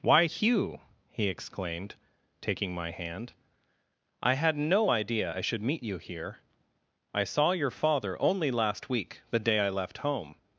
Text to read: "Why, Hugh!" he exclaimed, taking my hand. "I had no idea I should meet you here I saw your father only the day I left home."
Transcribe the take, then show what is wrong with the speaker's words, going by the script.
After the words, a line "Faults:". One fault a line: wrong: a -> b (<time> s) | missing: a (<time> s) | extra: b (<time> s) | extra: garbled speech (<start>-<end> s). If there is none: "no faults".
"Why, Hugh!" he exclaimed, taking my hand. "I had no idea I should meet you here I saw your father only last week, the day I left home."
Faults:
extra: last week (8.5 s)